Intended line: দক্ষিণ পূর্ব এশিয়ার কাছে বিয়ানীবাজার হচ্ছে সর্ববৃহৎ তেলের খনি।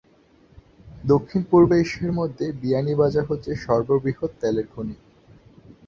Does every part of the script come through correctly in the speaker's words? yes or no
no